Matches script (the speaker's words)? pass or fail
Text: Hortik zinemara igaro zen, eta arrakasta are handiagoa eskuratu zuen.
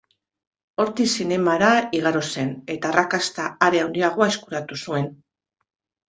pass